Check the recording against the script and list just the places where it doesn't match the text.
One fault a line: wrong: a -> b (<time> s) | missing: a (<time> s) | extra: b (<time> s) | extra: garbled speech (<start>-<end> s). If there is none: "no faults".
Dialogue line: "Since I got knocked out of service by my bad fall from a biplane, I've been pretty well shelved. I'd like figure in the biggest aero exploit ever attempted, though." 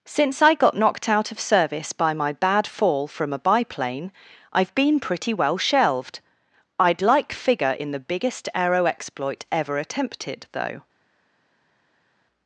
no faults